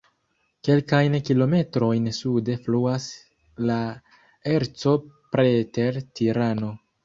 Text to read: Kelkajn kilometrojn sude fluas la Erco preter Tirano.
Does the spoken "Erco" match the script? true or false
true